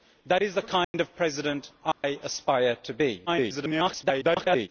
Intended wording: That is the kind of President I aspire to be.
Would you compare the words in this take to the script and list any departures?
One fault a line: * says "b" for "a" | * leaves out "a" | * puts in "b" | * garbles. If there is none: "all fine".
* garbles